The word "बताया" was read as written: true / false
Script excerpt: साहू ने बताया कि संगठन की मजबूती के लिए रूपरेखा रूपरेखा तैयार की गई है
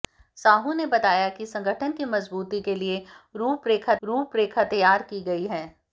true